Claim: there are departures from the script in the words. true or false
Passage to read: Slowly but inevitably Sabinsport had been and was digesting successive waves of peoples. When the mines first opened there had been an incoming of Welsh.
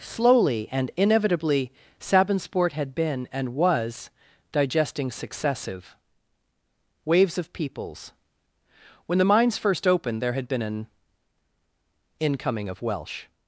true